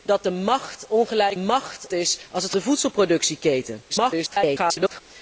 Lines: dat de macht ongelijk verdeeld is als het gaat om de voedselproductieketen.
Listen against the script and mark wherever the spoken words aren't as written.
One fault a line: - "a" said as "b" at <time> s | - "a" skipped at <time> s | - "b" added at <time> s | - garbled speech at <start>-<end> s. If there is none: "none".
- "verdeeld" said as "macht" at 1.3 s
- "gaat om" skipped at 2.5 s
- garbled speech at 3.9-5.0 s